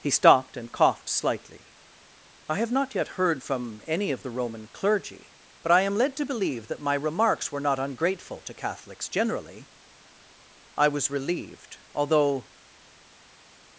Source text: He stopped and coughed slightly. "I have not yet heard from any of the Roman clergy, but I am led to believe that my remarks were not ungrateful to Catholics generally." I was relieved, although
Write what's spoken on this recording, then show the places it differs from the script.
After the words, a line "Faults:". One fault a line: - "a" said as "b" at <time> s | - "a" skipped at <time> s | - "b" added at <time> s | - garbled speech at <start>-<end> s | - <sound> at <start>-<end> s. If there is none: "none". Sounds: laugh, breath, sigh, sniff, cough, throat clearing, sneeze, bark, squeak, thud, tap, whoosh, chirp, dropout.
He stopped and coughed slightly. "I have not yet heard from any of the Roman clergy, but I am led to believe that my remarks were not ungrateful to Catholics generally." I was relieved, although
Faults:
none